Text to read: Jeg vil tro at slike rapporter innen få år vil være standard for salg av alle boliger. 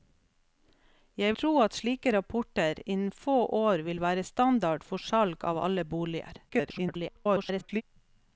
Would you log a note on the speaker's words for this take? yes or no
yes